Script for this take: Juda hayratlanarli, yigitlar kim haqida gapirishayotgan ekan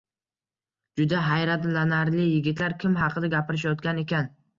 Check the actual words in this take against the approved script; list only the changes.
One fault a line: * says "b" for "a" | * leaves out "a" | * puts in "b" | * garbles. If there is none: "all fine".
all fine